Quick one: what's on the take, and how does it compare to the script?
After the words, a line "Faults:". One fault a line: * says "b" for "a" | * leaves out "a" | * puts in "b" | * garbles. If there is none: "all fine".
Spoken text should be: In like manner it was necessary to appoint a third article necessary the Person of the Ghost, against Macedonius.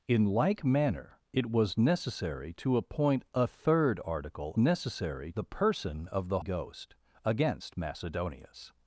In like manner it was necessary to appoint a third article necessary the Person of the Ghost, against Macedonius.
Faults:
all fine